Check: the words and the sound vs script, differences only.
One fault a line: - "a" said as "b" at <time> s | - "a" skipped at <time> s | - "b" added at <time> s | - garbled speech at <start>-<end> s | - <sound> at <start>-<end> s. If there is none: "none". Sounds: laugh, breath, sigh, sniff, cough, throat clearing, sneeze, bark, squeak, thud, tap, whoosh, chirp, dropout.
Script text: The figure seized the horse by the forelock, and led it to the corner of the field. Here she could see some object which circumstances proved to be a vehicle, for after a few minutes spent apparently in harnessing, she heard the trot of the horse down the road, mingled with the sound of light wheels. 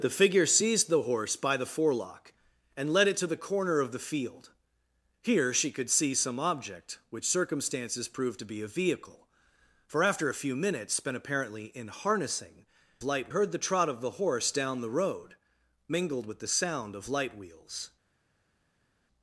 - "she" said as "light" at 13.0 s